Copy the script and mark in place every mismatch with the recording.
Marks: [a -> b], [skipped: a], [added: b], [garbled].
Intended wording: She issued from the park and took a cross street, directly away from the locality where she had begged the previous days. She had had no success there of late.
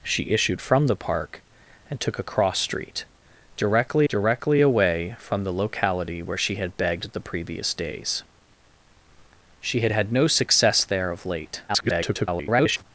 She issued from the park and took a cross street, directly [added: directly] away from the locality where she had begged the previous days. She had had no success there of late. [garbled]